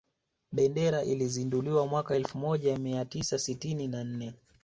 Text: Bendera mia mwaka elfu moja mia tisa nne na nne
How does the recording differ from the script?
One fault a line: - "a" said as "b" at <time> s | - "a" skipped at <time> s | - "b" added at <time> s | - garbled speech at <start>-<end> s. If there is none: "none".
- "mia" said as "ilizinduliwa" at 1.0 s
- "nne" said as "sitini" at 3.4 s